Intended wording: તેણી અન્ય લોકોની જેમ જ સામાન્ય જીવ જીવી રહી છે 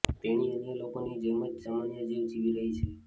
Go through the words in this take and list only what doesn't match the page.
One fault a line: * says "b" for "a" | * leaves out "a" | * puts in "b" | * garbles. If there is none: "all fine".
all fine